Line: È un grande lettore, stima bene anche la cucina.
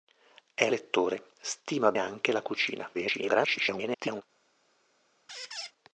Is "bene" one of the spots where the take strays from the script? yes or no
yes